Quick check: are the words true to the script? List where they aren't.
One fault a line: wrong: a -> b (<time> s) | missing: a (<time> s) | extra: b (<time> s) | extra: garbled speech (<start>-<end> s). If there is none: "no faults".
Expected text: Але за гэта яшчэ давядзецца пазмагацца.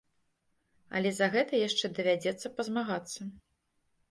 no faults